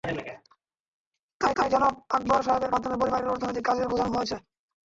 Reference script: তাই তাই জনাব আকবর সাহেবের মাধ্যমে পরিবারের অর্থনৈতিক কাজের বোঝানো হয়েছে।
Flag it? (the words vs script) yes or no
no